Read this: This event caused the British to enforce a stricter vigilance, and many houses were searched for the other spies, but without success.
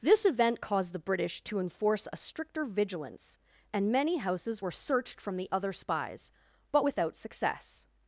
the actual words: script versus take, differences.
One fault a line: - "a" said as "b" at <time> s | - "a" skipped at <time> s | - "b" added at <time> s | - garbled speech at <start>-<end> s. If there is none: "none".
- "for" said as "from" at 5.2 s